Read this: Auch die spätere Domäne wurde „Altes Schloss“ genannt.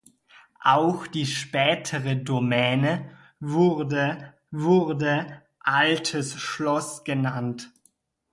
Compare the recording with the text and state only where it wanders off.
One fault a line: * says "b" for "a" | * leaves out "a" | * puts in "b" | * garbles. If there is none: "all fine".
* puts in "wurde"